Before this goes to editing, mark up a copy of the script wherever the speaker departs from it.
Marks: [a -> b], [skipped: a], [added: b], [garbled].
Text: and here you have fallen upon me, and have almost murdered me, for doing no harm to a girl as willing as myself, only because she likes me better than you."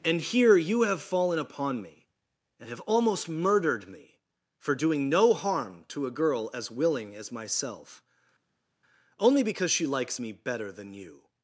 and here you have fallen upon me, and have almost murdered me, for doing no harm to a girl as willing as myself, only because she likes me better than you."